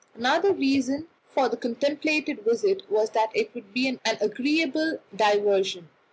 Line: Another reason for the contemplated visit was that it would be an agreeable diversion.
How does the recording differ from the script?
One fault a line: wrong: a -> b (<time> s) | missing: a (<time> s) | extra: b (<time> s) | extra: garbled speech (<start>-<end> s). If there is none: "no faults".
no faults